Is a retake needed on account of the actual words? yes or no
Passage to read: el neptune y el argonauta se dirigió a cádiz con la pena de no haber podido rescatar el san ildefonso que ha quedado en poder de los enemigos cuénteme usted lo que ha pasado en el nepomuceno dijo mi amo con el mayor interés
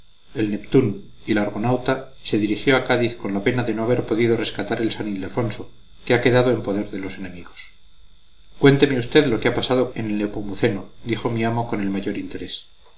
no